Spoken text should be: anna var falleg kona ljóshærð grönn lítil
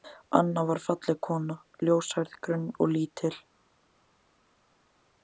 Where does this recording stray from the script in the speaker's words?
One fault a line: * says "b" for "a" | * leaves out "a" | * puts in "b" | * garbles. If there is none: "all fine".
* puts in "og"